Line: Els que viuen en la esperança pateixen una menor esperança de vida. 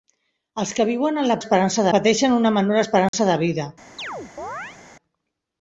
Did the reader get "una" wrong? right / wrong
right